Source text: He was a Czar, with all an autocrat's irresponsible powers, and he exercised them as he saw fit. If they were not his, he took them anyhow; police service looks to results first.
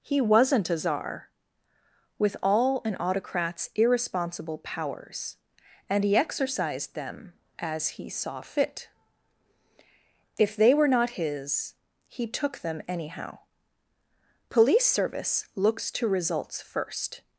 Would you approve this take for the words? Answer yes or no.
no